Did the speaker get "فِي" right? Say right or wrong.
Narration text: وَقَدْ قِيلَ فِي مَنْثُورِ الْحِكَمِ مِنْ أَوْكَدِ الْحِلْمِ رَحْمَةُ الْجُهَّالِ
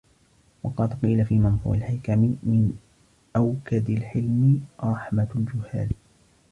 right